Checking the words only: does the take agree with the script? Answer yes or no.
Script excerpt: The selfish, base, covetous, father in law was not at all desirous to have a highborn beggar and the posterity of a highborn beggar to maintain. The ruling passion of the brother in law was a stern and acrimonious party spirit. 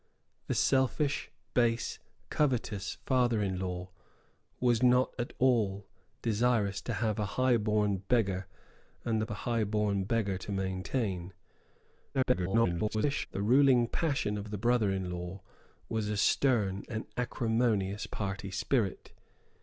no